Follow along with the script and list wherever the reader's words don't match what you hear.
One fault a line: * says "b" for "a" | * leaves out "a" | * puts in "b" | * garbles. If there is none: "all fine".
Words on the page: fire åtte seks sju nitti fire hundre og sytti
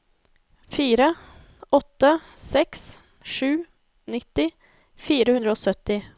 all fine